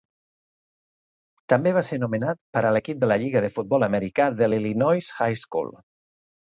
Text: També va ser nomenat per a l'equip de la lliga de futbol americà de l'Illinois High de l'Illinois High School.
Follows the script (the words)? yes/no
no